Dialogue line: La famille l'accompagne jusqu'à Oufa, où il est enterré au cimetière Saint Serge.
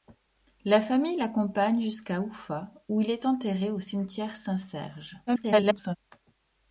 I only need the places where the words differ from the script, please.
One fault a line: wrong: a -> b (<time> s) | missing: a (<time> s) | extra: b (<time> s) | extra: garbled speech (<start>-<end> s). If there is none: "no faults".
extra: garbled speech (5.3-6.0 s)